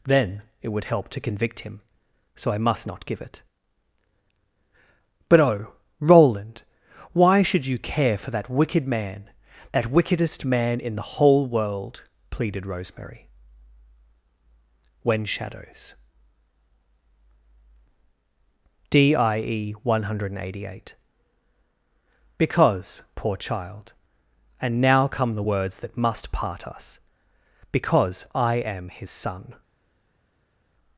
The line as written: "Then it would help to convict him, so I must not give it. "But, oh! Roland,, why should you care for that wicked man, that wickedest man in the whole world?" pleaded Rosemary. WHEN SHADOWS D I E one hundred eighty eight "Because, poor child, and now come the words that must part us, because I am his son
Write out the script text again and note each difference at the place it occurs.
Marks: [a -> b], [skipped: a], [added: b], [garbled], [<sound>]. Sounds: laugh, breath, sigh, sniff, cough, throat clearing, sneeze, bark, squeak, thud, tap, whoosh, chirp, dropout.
"Then it would help to convict him, so I must not give it. "But, oh! Roland,, why should you care for that wicked man, that wickedest man in the whole world?" pleaded Rosemary. WHEN SHADOWS D I E one hundred eighty eight "Because, poor child, and now come the words that must part us, because I am his son